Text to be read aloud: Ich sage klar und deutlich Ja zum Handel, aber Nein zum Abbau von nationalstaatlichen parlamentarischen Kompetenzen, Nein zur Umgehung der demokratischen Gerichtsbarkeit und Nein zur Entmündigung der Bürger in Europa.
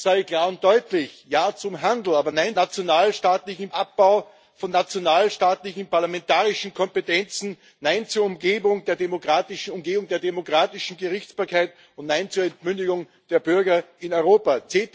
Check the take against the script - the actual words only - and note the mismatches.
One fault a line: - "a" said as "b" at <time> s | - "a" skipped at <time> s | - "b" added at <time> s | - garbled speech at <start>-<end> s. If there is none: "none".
- "zum" said as "nationalstaatlichen" at 2.5 s